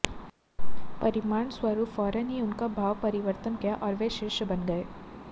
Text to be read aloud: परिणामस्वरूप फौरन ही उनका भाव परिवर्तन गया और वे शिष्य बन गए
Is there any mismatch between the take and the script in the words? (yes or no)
no